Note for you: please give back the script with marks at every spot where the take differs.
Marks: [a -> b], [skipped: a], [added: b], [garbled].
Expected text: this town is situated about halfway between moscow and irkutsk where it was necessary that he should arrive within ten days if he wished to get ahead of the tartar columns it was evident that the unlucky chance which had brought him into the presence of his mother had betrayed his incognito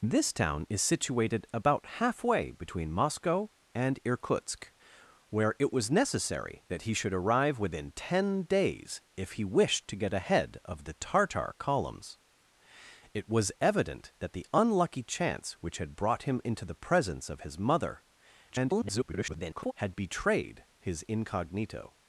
this town is situated about halfway between moscow and irkutsk where it was necessary that he should arrive within ten days if he wished to get ahead of the tartar columns it was evident that the unlucky chance which had brought him into the presence of his mother [garbled] had betrayed his incognito